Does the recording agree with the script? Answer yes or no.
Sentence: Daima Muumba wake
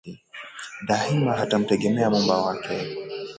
no